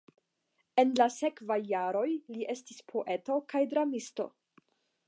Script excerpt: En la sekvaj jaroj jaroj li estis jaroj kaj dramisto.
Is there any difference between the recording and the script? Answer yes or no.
yes